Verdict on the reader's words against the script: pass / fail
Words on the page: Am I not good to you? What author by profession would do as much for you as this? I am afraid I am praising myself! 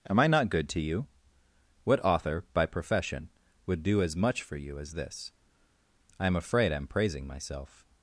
pass